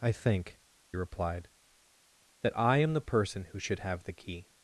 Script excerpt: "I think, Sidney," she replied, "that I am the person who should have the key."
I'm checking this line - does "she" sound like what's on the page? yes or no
no